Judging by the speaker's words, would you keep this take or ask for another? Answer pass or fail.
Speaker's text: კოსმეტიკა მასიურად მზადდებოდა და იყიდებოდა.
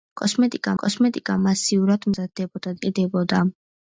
fail